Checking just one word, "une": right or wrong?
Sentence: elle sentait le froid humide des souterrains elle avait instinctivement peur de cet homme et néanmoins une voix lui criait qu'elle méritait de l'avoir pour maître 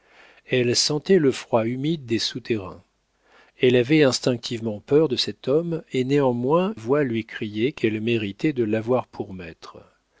wrong